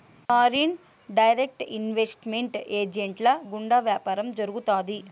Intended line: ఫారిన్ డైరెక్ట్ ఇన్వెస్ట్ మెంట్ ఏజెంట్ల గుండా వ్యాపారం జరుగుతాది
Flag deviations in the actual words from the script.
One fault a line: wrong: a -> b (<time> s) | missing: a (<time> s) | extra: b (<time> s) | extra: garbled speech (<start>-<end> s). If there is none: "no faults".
no faults